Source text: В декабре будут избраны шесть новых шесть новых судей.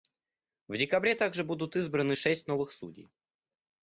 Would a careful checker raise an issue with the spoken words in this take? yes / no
yes